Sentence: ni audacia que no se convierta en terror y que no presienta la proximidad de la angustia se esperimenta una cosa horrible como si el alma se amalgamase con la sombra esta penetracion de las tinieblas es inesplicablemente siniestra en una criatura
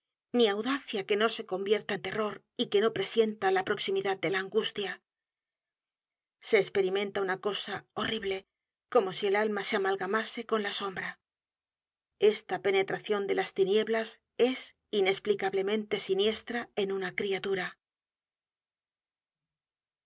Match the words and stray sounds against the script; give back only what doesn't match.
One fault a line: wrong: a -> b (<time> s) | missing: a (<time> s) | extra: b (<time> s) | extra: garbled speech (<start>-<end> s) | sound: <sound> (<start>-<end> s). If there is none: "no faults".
no faults